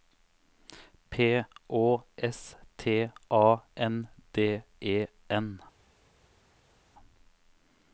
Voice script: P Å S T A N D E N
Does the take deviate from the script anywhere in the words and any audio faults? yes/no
no